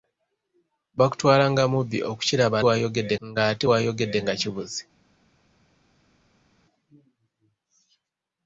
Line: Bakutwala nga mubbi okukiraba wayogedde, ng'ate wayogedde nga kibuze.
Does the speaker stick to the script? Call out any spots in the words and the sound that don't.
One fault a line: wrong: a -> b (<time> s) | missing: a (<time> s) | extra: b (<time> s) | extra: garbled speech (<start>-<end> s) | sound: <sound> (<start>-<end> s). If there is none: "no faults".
no faults